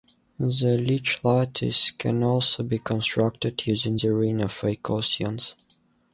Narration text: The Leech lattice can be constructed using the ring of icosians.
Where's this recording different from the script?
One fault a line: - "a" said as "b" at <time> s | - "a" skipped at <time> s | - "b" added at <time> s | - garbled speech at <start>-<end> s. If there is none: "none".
- "also" added at 2.2 s